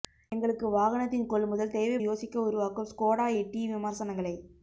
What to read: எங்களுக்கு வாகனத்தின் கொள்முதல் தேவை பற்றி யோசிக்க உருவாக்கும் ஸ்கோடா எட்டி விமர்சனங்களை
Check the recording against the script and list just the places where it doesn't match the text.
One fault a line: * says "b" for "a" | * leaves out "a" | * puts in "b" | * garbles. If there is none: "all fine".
* leaves out "பற்றி"